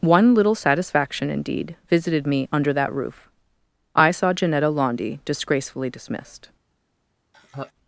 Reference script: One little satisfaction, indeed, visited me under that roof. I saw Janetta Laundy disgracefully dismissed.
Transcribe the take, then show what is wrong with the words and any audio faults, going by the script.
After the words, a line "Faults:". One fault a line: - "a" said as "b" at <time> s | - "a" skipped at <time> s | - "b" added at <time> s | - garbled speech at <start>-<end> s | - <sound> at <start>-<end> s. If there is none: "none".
One little satisfaction, indeed, visited me under that roof. I saw Janetta Laundy disgracefully dismissed.
Faults:
- laugh at 7.3-7.7 s